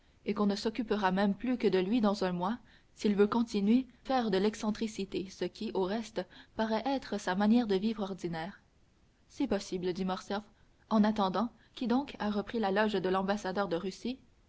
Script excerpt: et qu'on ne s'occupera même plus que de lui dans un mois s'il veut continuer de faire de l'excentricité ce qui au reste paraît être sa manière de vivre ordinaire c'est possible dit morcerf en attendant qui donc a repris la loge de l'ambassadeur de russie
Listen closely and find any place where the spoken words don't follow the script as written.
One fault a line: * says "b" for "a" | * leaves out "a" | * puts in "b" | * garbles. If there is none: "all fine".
* leaves out "de"